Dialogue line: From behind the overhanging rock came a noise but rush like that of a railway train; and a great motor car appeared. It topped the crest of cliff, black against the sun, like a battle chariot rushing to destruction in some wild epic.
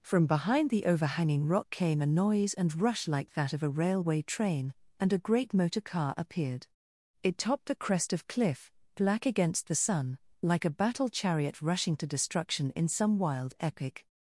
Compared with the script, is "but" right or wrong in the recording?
wrong